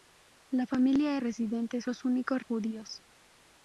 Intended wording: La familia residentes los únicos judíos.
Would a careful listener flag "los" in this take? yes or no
no